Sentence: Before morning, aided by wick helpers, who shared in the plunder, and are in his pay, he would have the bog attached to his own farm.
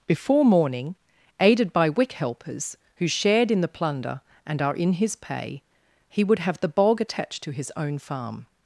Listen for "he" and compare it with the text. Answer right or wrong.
right